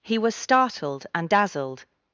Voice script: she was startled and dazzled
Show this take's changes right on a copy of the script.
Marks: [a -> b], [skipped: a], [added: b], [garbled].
[she -> he] was startled and dazzled